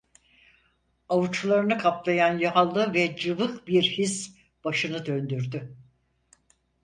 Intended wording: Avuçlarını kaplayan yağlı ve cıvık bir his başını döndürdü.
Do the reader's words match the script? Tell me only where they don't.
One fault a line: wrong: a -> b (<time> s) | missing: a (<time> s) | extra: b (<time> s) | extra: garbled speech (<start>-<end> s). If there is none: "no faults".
no faults